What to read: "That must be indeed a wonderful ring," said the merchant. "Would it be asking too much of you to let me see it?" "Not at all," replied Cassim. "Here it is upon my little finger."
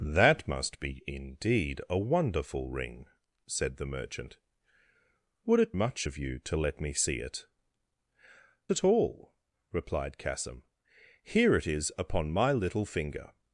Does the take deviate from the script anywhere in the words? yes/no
yes